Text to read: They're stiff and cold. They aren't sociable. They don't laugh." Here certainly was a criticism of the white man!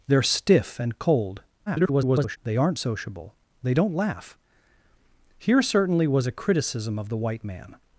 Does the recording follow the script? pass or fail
fail